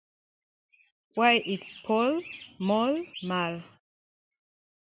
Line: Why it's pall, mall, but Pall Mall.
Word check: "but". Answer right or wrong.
wrong